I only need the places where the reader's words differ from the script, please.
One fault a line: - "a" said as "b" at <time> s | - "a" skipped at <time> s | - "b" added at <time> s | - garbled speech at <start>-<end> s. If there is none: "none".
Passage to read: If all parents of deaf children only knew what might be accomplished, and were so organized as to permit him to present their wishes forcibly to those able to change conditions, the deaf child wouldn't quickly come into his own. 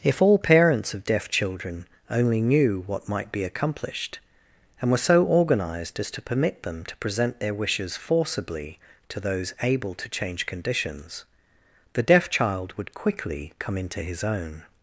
- "him" said as "them" at 6.6 s
- "wouldn't" said as "would" at 12.8 s